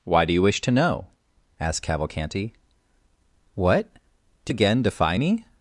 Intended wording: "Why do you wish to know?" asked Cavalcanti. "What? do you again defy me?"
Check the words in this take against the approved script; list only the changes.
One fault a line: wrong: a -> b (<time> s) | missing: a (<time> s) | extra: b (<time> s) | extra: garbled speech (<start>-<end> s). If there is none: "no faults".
missing: you (4.5 s)